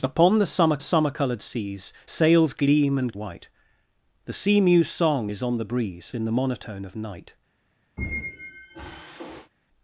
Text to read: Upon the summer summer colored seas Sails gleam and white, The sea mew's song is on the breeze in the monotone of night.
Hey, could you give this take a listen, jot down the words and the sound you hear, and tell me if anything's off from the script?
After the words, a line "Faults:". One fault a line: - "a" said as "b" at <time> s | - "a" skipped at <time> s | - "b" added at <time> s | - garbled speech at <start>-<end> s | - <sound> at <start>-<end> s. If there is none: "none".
Upon the summer summer colored seas Sails gleam and white, The sea mew's song is on the breeze in the monotone of night.
Faults:
- squeak at 8.0-9.5 s